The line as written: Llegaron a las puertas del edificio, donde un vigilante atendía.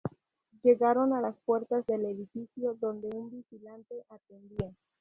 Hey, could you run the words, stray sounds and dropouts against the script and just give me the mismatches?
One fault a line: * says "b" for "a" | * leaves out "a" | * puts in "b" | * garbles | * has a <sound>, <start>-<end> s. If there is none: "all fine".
all fine